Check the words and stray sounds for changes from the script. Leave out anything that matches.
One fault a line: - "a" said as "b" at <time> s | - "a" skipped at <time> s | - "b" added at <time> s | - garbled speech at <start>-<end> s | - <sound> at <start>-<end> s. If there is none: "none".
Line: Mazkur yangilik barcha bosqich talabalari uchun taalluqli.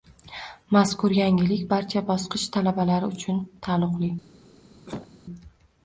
- cough at 4.9-5.1 s